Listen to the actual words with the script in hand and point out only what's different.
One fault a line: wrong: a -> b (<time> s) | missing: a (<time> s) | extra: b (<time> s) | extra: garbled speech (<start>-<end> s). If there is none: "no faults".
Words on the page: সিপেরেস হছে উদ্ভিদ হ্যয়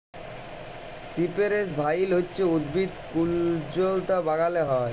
extra: ভাইল (1.7 s)
extra: কুল্জলতা বাগালে (3.1 s)